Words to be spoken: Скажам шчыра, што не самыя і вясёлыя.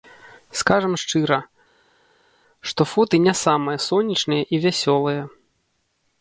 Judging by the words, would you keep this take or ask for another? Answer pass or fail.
fail